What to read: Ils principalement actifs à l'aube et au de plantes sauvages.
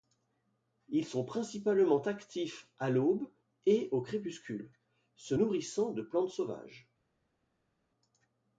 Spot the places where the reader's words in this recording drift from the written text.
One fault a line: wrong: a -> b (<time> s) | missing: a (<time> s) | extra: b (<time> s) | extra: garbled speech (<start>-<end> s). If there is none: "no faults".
extra: sont (1.1 s)
extra: crépuscule se nourrissant (4.0 s)